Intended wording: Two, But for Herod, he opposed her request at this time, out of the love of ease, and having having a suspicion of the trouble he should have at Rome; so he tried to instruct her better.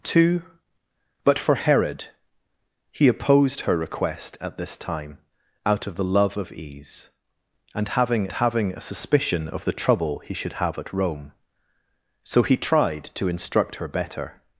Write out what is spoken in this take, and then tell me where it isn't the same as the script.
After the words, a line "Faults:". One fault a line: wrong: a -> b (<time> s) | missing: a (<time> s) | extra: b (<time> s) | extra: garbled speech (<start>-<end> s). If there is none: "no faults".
Two, But for Herod, he opposed her request at this time, out of the love of ease, and having having a suspicion of the trouble he should have at Rome; so he tried to instruct her better.
Faults:
no faults